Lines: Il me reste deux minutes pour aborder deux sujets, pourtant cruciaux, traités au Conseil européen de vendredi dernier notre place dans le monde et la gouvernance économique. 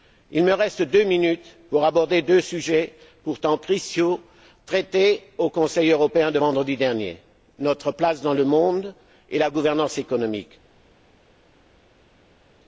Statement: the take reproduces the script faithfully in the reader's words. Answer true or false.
true